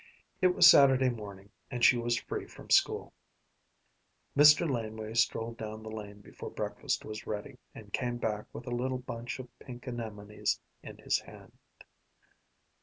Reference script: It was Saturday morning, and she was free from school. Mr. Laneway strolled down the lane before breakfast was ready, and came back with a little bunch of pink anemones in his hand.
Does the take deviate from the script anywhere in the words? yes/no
no